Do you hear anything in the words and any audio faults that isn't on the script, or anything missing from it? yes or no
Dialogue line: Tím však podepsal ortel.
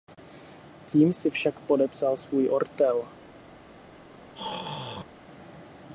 yes